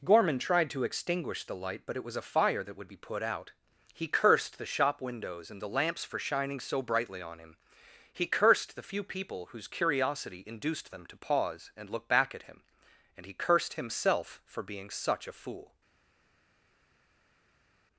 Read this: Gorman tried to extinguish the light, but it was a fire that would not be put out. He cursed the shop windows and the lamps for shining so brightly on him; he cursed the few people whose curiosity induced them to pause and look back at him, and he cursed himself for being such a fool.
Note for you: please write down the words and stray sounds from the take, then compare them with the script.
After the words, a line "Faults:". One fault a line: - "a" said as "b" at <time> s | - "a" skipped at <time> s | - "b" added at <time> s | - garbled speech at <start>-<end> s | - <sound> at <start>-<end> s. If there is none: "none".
Gorman tried to extinguish the light, but it was a fire that would be put out. He cursed the shop windows and the lamps for shining so brightly on him; he cursed the few people whose curiosity induced them to pause and look back at him, and he cursed himself for being such a fool.
Faults:
- "not" skipped at 2.9 s